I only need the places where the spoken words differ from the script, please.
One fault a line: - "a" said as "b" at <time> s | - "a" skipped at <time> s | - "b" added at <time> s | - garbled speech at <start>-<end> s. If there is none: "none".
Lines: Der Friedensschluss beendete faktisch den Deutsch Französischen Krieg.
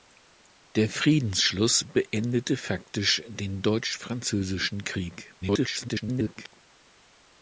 - garbled speech at 5.4-6.6 s